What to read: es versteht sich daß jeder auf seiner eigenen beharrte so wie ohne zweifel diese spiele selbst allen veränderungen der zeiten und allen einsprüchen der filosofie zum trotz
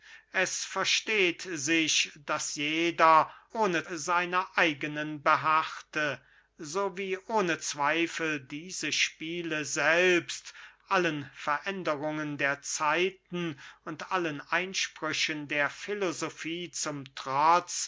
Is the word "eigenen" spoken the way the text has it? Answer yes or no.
yes